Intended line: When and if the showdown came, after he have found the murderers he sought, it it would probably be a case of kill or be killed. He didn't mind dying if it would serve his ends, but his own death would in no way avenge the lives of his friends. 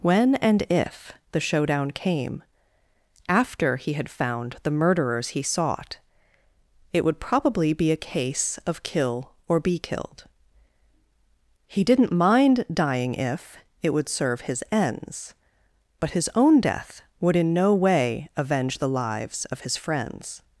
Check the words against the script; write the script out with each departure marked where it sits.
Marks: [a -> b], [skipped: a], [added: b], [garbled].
When and if the showdown came, after he [have -> had] found the murderers he sought, it [skipped: it] would probably be a case of kill or be killed. He didn't mind dying if it would serve his ends, but his own death would in no way avenge the lives of his friends.